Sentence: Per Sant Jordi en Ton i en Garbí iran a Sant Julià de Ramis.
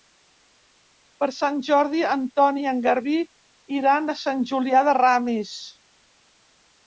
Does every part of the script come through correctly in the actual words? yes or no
yes